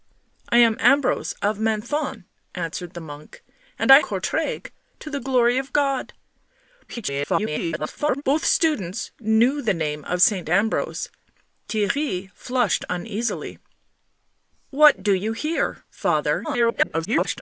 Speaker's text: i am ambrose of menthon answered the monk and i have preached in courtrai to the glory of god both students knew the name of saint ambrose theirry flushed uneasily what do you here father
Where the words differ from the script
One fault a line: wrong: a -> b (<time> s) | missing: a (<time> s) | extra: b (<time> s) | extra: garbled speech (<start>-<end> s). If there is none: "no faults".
missing: have preached in (4.0 s)
extra: garbled speech (6.9-8.2 s)
extra: garbled speech (16.4-17.4 s)